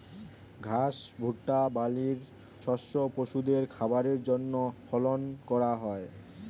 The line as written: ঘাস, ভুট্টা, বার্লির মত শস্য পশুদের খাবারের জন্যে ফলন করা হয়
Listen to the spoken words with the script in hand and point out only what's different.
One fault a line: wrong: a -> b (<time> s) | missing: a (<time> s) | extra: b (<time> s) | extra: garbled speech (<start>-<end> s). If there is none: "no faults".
missing: মত (2.2 s)